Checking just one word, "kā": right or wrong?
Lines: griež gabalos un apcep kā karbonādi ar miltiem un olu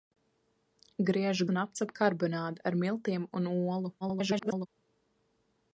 wrong